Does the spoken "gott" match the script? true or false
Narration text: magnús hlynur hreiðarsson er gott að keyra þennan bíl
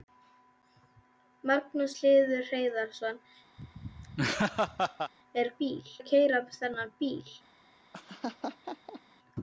false